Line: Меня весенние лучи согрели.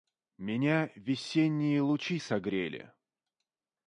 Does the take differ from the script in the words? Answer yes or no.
no